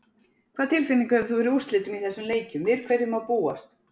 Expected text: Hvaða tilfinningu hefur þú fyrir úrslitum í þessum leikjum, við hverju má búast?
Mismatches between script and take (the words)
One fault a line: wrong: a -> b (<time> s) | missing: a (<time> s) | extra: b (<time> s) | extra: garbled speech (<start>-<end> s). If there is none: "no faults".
no faults